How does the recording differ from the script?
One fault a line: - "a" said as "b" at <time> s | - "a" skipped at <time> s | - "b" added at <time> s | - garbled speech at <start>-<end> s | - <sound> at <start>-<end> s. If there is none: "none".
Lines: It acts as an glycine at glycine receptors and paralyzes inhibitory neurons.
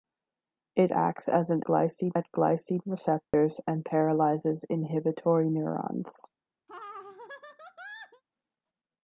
- dropout at 3.2-3.3 s
- laugh at 6.7-8.2 s